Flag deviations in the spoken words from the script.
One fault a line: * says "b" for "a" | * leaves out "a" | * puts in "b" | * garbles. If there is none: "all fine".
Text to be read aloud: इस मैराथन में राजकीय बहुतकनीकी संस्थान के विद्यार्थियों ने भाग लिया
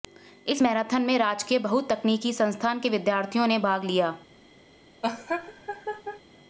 all fine